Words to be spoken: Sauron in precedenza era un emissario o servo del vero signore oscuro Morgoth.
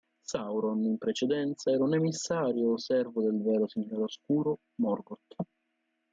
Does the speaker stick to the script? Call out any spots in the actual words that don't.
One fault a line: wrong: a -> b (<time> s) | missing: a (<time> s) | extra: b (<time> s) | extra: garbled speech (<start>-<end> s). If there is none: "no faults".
no faults